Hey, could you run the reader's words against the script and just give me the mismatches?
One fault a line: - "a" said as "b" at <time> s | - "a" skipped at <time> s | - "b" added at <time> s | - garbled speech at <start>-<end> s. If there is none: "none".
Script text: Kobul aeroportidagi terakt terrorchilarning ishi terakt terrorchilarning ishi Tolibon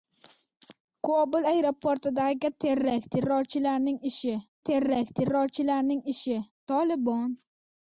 none